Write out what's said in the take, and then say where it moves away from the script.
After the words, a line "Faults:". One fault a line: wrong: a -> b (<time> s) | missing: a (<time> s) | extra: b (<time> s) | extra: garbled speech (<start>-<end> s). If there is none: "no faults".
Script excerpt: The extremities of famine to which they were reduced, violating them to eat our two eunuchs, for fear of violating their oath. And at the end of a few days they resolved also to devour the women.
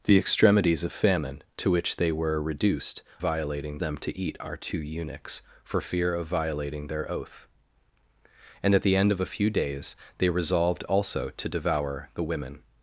The extremities of famine to which they were reduced, violating them to eat our two eunuchs, for fear of violating their oath. And at the end of a few days they resolved also to devour the women.
Faults:
no faults